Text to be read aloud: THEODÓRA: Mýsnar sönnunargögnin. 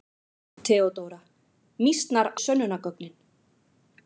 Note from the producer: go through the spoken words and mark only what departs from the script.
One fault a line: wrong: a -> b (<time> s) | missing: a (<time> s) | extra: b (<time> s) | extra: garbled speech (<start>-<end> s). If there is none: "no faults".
no faults